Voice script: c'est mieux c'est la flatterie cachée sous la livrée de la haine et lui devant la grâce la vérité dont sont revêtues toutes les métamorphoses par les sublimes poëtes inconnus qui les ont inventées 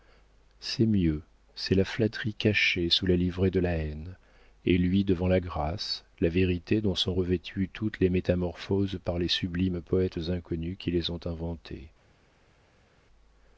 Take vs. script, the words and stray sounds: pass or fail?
pass